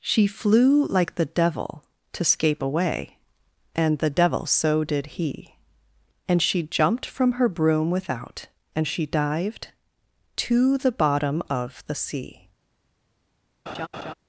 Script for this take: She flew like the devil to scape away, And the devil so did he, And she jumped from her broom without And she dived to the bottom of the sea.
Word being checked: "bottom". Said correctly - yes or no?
yes